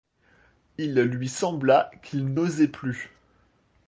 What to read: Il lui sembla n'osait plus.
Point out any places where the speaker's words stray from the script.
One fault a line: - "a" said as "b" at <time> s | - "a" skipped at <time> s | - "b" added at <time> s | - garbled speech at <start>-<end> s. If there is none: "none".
- "qu'il" added at 2.0 s